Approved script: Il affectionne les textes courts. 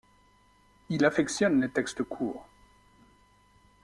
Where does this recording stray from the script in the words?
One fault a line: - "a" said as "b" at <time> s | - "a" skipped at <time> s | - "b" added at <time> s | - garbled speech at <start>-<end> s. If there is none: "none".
none